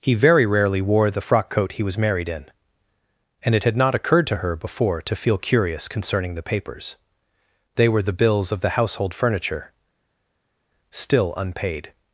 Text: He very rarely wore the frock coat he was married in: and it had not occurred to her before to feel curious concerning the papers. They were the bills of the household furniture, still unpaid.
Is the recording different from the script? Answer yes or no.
no